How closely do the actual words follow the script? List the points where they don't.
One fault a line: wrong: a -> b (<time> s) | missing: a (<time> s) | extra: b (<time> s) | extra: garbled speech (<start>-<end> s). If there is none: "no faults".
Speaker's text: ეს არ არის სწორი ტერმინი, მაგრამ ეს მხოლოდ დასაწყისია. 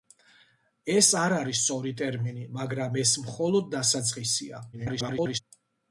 extra: garbled speech (4.7-5.4 s)